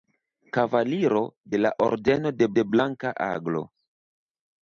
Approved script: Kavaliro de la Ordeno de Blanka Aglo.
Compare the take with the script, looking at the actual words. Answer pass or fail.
fail